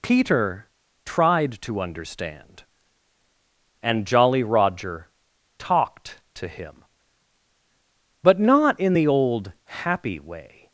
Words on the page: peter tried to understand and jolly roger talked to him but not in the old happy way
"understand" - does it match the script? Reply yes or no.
yes